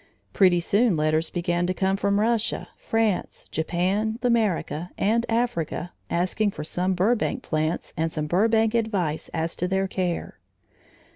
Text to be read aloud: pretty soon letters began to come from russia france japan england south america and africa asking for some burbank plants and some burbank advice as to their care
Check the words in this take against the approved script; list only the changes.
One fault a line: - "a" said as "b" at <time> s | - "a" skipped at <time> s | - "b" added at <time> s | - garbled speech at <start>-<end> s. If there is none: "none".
- "england south" skipped at 4.2 s